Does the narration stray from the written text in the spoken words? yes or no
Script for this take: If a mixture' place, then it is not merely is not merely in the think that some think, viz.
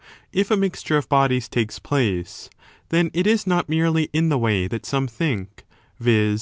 yes